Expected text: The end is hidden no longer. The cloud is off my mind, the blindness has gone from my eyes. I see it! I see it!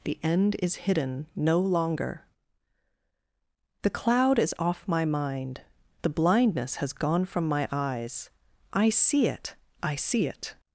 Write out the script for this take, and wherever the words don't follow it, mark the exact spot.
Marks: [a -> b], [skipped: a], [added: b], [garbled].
The end is hidden no longer. The cloud is off my mind, the blindness has gone from my eyes. I see it! I see it!